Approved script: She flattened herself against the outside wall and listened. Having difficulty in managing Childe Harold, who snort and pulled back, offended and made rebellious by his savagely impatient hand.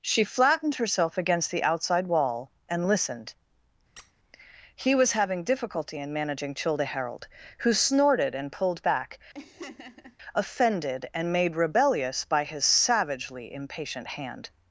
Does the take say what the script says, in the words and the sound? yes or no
no